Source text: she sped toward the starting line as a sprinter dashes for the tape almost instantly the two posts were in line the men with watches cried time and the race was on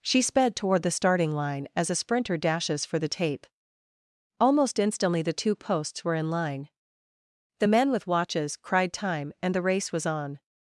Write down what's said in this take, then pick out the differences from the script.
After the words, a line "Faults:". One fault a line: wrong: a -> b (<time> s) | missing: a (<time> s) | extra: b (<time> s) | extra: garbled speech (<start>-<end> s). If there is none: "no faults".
she sped toward the starting line as a sprinter dashes for the tape almost instantly the two posts were in line the men with watches cried time and the race was on
Faults:
no faults